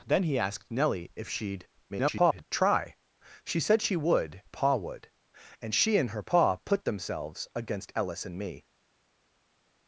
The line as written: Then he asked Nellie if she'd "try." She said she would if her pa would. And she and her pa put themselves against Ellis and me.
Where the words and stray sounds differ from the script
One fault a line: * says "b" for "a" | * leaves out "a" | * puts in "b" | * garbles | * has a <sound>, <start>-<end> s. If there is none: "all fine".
* garbles
* leaves out "if her"